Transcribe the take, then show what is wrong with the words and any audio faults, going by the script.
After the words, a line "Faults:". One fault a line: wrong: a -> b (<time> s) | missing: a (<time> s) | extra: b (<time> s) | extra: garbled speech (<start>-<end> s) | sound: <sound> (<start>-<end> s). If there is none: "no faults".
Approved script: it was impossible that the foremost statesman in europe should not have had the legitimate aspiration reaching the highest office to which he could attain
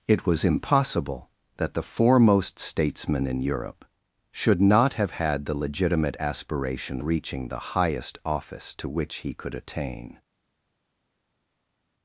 it was impossible that the foremost statesman in europe should not have had the legitimate aspiration reaching the highest office to which he could attain
Faults:
no faults